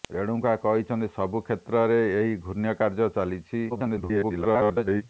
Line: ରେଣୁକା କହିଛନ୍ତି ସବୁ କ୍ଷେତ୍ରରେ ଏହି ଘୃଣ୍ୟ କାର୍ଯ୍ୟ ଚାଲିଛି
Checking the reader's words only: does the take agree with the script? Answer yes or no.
no